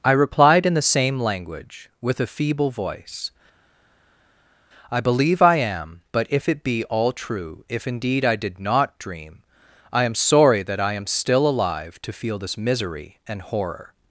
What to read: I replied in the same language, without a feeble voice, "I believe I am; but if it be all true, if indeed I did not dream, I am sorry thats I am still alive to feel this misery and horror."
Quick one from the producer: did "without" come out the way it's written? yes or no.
no